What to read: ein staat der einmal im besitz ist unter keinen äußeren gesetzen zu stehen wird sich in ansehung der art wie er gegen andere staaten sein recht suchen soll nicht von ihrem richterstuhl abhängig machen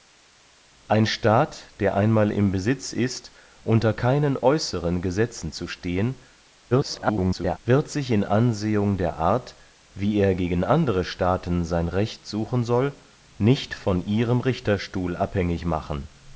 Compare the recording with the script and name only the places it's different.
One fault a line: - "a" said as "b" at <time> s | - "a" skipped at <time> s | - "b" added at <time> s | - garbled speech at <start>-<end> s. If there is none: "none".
- garbled speech at 6.7-7.6 s